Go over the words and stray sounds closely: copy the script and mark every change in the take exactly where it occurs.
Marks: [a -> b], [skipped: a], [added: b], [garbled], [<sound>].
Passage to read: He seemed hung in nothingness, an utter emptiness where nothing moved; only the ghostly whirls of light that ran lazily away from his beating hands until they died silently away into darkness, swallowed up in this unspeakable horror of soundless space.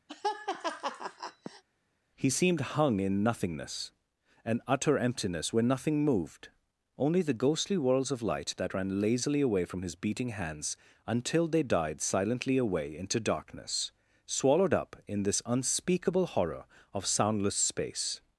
[laugh] He seemed hung in nothingness, an utter emptiness where nothing moved; only the ghostly whirls of light that ran lazily away from his beating hands until they died silently away into darkness, swallowed up in this unspeakable horror of soundless space.